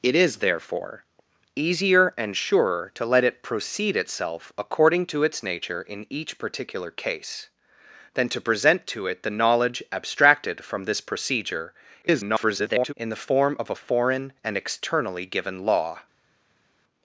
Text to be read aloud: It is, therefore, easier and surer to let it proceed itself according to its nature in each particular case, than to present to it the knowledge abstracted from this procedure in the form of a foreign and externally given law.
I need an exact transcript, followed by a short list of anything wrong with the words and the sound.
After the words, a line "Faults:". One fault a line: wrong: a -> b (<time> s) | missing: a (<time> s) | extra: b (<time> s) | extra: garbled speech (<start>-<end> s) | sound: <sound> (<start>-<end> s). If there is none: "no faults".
It is, therefore, easier and surer to let it proceed itself according to its nature in each particular case, than to present to it the knowledge abstracted from this procedure [garbled] in the form of a foreign and externally given law.
Faults:
extra: garbled speech (12.0-12.9 s)